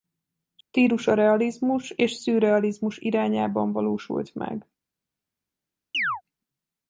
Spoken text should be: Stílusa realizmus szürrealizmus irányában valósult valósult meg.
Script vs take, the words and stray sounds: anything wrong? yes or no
yes